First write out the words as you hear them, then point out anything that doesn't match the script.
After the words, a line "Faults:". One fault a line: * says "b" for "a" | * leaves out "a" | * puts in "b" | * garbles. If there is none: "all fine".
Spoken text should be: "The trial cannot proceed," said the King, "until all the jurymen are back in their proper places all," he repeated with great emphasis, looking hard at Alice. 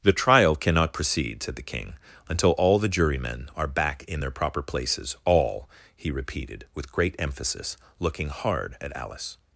"The trial cannot proceed," said the King, "until all the jurymen are back in their proper places all," he repeated with great emphasis, looking hard at Alice.
Faults:
all fine